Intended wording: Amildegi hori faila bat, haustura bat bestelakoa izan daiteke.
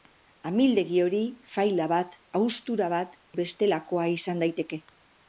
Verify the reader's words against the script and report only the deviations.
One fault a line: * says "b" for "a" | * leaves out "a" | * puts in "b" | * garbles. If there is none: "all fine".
all fine